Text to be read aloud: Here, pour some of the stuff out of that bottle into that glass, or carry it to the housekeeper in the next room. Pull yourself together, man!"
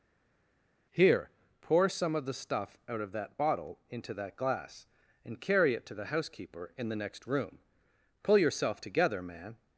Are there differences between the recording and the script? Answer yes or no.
yes